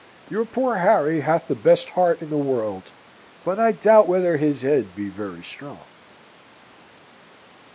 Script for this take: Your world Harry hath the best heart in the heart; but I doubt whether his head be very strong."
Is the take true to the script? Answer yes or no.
no